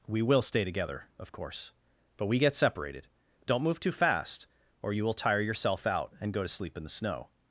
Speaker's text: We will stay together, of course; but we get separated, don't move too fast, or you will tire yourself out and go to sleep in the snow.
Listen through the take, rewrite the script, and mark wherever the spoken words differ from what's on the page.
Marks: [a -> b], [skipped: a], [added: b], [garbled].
We will stay together, of course; but we get separated, don't move too fast, or you will tire yourself out and go to sleep in the snow.